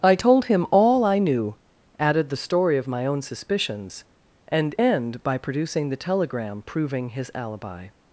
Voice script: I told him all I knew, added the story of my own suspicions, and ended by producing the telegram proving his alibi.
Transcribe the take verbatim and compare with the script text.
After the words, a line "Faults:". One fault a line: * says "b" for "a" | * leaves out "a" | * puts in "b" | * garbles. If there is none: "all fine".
I told him all I knew, added the story of my own suspicions, and end by producing the telegram proving his alibi.
Faults:
* says "end" for "ended"